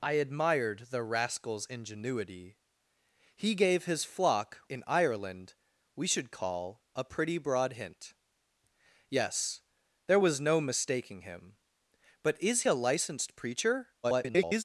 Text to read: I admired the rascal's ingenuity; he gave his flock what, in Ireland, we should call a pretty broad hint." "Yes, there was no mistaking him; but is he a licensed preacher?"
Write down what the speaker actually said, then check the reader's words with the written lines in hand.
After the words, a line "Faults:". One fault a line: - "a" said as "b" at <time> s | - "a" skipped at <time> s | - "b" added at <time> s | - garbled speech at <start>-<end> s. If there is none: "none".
I admired the rascal's ingenuity; he gave his flock in Ireland, we should call a pretty broad hint." "Yes, there was no mistaking him; but is a licensed preacher?" [garbled]
Faults:
- "what" skipped at 4.6 s
- "he" skipped at 12.6 s
- garbled speech at 14.0-14.6 s